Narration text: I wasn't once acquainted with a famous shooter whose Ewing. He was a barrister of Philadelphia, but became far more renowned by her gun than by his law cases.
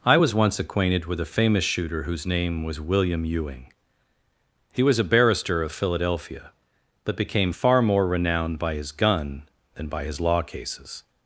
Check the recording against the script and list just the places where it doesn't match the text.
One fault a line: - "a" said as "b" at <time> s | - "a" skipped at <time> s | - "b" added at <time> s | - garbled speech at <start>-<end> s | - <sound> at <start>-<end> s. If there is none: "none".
- "wasn't" said as "was" at 0.1 s
- "name was William" added at 2.2 s
- "her" said as "his" at 8.7 s